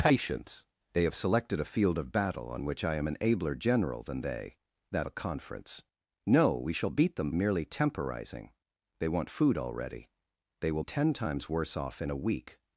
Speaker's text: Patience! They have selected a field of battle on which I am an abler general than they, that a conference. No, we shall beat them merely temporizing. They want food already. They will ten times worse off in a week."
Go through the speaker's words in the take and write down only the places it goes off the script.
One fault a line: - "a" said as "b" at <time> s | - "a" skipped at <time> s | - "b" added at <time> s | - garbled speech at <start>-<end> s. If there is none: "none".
none